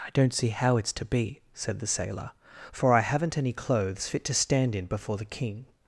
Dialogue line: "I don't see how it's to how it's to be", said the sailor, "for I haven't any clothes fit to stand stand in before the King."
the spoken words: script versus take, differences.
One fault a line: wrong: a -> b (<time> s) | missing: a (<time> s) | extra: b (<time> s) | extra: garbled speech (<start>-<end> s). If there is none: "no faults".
missing: how it's to (1.1 s)
missing: stand (4.7 s)